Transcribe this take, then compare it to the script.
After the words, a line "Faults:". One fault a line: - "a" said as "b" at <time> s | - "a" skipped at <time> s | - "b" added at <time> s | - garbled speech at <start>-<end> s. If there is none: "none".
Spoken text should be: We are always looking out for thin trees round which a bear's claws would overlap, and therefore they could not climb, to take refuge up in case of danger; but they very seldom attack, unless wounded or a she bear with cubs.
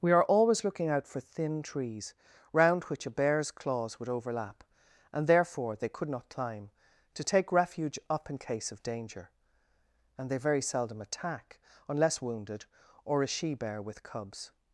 We are always looking out for thin trees round which a bear's claws would overlap, and therefore they could not climb, to take refuge up in case of danger; and they very seldom attack, unless wounded or a she bear with cubs.
Faults:
- "but" said as "and" at 10.2 s